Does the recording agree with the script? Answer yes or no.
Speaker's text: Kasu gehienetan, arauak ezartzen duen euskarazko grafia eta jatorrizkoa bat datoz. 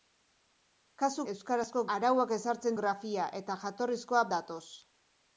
no